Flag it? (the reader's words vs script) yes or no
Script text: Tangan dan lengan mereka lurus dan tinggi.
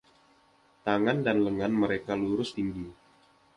yes